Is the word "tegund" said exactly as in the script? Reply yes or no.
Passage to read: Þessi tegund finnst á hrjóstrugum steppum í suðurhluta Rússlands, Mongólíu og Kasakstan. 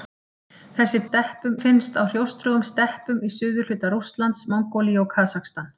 no